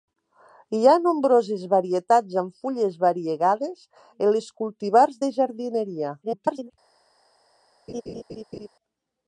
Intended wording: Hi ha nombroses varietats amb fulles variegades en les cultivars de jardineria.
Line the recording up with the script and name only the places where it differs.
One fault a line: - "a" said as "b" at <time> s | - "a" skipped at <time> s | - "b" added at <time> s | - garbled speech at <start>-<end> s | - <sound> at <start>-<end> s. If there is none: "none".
- garbled speech at 6.2-6.7 s
- laugh at 7.9-8.7 s